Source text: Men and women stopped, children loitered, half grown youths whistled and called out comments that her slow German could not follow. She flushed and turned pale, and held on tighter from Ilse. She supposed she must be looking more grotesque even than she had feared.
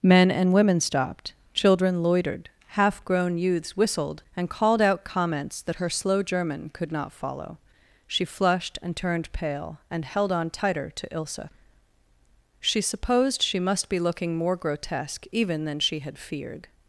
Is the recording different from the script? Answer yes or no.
yes